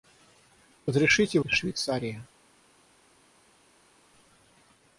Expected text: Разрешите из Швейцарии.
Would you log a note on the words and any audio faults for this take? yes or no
no